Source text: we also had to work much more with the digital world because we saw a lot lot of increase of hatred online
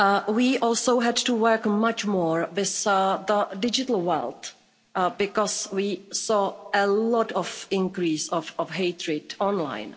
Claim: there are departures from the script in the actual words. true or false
true